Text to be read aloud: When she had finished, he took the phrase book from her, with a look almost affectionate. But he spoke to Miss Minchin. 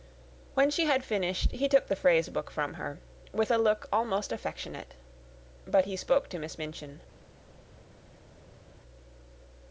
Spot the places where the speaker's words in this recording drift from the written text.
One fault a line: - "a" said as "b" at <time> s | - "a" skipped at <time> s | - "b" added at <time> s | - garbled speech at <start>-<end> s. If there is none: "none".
none